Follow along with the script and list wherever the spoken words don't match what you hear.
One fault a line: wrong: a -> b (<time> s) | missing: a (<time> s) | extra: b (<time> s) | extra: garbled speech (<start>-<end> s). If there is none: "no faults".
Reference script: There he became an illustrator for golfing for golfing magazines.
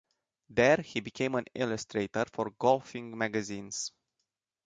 missing: for golfing (3.1 s)